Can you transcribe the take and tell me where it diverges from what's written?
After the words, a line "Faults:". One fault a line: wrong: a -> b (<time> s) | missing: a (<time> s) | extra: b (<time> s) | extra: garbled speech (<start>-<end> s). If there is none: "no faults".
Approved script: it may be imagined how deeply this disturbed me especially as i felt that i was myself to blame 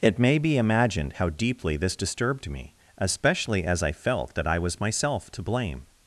it may be imagined how deeply this disturbed me especially as i felt that i was myself to blame
Faults:
no faults